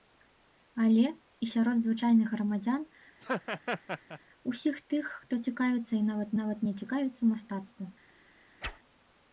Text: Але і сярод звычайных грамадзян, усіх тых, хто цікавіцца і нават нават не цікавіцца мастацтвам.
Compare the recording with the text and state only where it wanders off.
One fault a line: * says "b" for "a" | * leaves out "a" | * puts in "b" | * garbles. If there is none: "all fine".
all fine